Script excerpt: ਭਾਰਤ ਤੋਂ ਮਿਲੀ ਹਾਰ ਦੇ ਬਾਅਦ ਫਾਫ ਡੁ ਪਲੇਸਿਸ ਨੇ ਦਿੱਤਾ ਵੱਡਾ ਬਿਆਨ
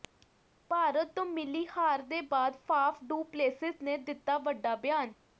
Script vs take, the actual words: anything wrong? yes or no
no